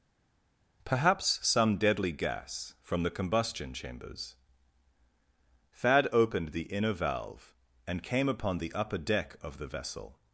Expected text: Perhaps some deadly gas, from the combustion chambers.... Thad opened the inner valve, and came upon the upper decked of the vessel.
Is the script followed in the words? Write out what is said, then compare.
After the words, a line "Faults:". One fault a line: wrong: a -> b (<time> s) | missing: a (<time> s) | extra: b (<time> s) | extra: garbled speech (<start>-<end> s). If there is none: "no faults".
Perhaps some deadly gas, from the combustion chambers.... Thad opened the inner valve, and came upon the upper deck of the vessel.
Faults:
wrong: decked -> deck (9.0 s)